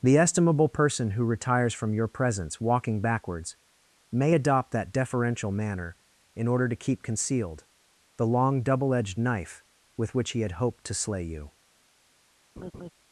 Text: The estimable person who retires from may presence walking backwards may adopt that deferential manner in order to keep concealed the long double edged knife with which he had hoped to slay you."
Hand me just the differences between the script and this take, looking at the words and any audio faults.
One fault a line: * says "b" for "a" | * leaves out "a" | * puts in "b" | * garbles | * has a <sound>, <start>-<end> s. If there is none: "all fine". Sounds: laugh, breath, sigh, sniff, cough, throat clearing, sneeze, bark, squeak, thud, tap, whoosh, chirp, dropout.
* says "your" for "may"
* has a laugh, 12.6-12.9 s